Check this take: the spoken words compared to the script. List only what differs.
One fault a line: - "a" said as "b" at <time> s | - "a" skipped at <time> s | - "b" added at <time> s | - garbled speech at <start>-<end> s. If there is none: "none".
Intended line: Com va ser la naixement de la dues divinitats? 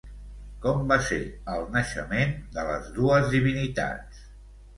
- "la" said as "el" at 1.6 s
- "la" said as "les" at 2.7 s